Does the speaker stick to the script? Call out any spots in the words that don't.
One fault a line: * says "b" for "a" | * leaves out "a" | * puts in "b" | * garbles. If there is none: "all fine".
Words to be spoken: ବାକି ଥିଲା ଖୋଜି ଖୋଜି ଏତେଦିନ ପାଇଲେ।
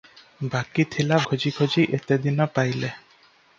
all fine